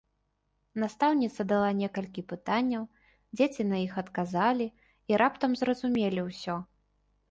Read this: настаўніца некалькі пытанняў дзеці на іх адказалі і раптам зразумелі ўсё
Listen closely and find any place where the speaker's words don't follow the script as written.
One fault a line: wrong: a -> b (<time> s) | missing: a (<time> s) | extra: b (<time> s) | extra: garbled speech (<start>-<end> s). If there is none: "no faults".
extra: дала (1.5 s)